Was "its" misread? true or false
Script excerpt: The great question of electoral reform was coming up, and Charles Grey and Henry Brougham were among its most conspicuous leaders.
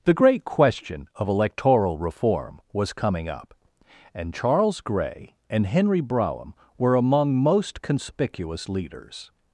true